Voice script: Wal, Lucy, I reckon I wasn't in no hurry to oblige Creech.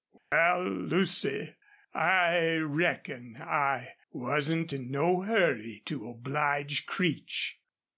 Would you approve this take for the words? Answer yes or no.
yes